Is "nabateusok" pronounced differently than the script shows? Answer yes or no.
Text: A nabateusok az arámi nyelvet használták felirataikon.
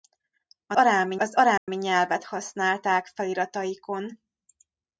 yes